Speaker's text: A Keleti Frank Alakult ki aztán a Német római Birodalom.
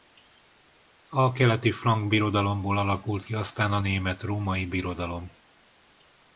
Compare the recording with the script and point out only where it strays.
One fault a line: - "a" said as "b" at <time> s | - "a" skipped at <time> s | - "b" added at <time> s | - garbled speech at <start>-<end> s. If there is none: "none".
- "Birodalomból" added at 2.1 s